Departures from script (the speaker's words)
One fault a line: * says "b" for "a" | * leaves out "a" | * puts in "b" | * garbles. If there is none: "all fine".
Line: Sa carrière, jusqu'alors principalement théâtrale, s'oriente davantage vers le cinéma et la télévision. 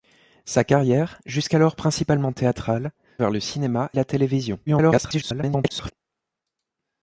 * leaves out "s'oriente davantage"
* leaves out "et"
* garbles